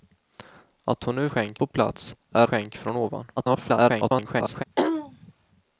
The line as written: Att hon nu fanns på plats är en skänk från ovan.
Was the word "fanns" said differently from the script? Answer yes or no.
yes